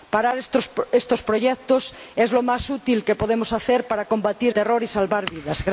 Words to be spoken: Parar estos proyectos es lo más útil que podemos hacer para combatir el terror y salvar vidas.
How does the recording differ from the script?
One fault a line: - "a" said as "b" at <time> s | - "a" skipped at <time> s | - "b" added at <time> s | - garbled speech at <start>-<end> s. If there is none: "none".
- "el" skipped at 4.5 s